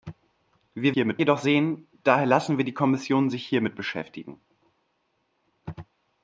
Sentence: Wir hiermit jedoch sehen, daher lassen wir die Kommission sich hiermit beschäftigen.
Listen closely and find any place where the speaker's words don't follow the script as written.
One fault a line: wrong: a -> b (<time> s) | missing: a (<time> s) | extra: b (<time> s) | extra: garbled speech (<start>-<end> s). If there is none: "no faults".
no faults